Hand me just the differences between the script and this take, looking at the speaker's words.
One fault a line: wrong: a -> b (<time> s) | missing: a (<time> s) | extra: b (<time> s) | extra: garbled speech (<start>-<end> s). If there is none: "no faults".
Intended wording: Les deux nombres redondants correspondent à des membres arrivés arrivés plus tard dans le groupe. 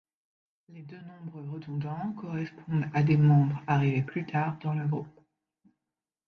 missing: arrivés (4.0 s)